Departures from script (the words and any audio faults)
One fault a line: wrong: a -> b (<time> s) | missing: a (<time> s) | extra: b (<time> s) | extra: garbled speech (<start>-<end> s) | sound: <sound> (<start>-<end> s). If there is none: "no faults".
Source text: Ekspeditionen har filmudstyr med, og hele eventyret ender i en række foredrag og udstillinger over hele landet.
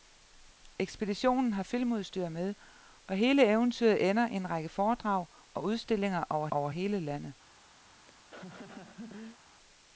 extra: over (6.5 s)
sound: laugh (7.8-9.4 s)